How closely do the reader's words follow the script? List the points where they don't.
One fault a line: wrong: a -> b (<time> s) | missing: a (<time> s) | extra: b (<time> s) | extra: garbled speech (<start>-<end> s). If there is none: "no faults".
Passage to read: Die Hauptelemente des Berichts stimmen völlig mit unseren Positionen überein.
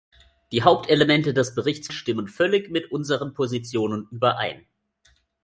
no faults